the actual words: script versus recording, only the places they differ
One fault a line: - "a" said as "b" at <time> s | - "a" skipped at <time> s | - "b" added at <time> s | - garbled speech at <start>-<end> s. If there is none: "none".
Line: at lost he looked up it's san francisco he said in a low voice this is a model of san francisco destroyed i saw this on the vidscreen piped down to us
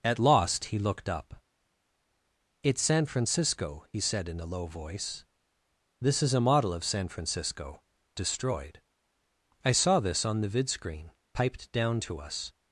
none